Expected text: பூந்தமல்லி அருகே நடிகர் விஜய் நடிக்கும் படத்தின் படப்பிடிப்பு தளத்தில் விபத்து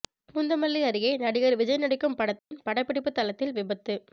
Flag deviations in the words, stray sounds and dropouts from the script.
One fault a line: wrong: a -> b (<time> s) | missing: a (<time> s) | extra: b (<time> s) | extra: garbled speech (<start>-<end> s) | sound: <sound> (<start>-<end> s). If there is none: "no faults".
sound: dropout (2.4-2.5 s)